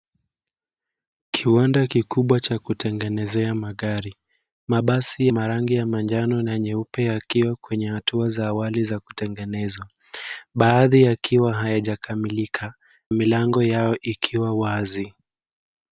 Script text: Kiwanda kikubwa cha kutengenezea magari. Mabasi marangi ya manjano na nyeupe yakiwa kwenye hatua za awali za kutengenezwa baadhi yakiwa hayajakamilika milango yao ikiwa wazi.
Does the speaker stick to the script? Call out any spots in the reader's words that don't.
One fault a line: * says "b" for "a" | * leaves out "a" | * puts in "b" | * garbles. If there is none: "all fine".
all fine